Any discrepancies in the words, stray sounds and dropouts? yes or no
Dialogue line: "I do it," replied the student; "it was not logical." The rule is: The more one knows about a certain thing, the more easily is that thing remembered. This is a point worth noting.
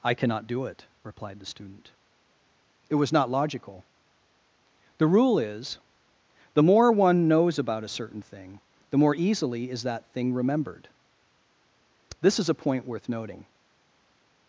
yes